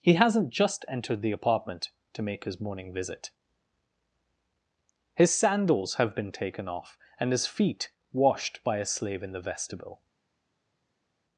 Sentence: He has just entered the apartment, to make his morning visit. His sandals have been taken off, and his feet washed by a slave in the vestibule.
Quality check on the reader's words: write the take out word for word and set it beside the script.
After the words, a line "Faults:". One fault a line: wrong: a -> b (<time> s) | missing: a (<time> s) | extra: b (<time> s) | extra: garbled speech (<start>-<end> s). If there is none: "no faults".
He hasn't just entered the apartment, to make his morning visit. His sandals have been taken off, and his feet washed by a slave in the vestibule.
Faults:
wrong: has -> hasn't (0.1 s)